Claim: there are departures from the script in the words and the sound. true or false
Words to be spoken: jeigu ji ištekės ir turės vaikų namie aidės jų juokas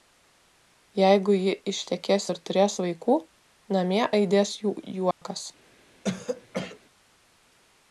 true